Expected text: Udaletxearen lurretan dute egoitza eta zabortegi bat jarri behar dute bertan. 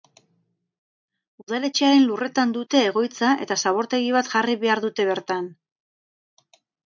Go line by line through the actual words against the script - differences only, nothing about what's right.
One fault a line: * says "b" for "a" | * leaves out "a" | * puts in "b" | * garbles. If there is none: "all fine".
all fine